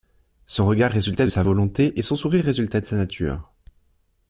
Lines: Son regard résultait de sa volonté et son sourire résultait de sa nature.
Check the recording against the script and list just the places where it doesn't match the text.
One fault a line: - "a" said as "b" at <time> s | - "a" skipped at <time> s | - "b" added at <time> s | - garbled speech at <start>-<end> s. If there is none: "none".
none